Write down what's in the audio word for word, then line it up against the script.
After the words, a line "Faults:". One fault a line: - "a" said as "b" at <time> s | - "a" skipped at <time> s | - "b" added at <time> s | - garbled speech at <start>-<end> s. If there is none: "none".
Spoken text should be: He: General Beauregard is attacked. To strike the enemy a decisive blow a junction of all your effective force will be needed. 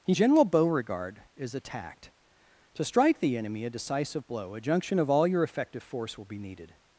He: General Beauregard is attacked. To strike the enemy a decisive blow a junction of all your effective force will be needed.
Faults:
none